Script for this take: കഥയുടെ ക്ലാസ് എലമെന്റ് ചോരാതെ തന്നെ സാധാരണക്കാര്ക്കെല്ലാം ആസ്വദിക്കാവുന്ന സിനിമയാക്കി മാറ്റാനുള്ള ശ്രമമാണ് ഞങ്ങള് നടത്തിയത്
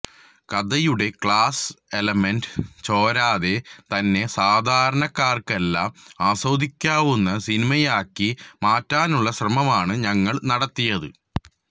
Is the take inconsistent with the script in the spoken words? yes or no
no